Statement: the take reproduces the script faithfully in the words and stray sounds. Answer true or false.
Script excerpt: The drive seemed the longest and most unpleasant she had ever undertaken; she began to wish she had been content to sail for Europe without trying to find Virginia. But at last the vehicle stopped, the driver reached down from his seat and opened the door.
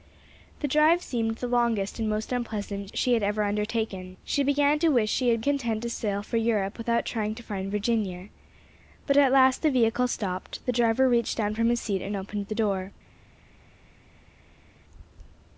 false